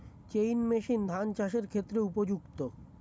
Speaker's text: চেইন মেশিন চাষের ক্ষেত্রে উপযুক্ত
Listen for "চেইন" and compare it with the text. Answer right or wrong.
right